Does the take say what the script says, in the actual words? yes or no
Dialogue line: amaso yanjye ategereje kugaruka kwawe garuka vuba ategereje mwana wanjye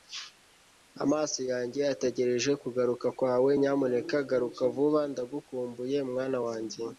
no